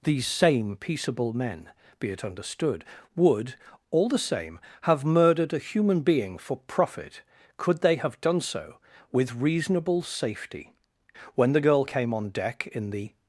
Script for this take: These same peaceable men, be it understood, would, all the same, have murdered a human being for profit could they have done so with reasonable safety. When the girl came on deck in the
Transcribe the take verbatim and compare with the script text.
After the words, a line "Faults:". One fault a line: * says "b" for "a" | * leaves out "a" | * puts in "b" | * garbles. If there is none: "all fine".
These same peaceable men, be it understood, would, all the same, have murdered a human being for profit could they have done so with reasonable safety. When the girl came on deck in the
Faults:
all fine